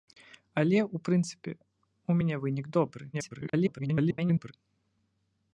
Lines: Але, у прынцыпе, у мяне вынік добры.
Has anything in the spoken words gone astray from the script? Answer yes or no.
yes